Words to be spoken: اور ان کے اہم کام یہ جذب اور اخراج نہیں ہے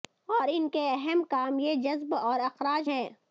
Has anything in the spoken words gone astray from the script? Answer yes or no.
yes